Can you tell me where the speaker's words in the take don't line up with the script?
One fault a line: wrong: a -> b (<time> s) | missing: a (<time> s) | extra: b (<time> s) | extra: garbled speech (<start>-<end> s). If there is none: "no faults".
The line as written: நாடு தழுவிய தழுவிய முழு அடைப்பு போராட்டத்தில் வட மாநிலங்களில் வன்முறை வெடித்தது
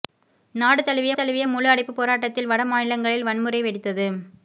no faults